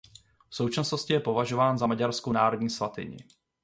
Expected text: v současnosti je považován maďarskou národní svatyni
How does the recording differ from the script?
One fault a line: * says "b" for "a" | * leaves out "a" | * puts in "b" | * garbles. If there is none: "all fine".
* puts in "za"